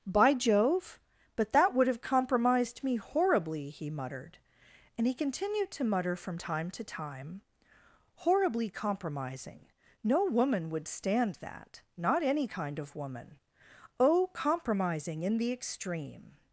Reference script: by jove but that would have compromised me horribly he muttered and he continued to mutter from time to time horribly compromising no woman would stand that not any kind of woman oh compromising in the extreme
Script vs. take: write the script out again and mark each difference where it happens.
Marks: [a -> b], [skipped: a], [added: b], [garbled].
by jove but that would have compromised me horribly he muttered and he continued to mutter from time to time horribly compromising no woman would stand that not any kind of woman oh compromising in the extreme